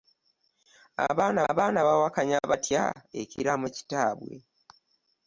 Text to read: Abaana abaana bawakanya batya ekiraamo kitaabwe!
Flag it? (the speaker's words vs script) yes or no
no